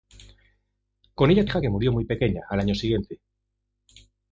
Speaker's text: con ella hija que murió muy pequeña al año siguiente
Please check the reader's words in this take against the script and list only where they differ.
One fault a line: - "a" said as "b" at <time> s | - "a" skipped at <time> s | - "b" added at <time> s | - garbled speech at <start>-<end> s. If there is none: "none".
none